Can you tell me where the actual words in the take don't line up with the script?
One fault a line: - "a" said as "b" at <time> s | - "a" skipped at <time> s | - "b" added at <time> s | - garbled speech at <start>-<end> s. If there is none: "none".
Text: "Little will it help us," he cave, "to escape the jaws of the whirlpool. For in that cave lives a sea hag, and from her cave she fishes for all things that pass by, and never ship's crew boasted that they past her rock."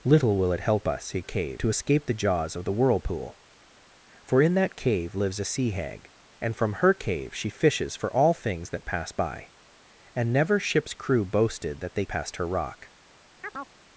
none